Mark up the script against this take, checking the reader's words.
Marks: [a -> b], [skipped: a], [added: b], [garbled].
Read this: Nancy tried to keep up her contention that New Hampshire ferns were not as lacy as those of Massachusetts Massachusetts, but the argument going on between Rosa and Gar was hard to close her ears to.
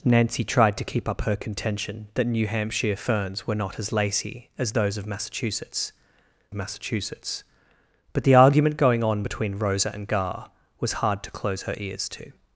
Nancy tried to keep up her contention that New Hampshire ferns were not as lacy as those of Massachusetts Massachusetts, but the argument going on between Rosa and Gar was hard to close her ears to.